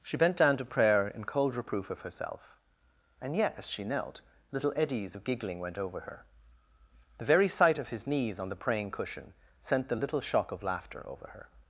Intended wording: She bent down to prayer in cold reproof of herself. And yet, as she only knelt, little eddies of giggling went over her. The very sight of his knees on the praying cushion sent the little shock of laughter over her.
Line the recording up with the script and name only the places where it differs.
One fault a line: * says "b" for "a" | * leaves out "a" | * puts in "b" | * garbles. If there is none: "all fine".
* leaves out "only"